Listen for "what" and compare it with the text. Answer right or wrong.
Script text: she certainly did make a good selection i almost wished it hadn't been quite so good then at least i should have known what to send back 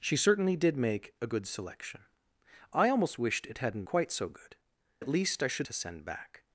wrong